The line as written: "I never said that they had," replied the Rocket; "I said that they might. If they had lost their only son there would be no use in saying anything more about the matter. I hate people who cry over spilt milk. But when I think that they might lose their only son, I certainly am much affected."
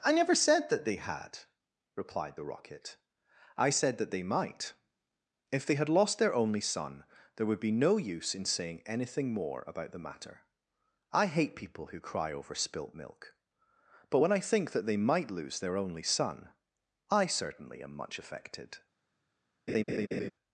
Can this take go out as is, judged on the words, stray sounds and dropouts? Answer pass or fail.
fail